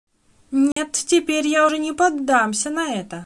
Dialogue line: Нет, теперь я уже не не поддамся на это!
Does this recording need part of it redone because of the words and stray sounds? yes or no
yes